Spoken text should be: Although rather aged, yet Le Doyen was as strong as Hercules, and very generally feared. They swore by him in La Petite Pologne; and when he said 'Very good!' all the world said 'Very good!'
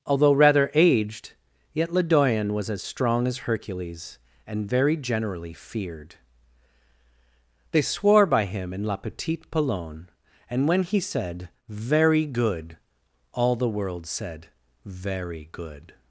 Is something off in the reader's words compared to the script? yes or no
no